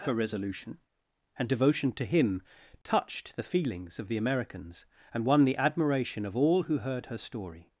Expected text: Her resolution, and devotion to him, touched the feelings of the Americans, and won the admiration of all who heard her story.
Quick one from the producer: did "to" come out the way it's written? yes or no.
yes